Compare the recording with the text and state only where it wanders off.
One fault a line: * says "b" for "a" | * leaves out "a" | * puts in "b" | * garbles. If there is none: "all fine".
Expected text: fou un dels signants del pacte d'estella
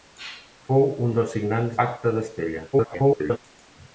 * leaves out "del"
* garbles